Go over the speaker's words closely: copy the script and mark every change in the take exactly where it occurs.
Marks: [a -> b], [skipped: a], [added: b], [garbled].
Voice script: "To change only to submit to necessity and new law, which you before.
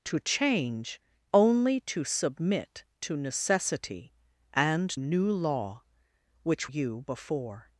"To change only to submit to necessity and new law, which you before.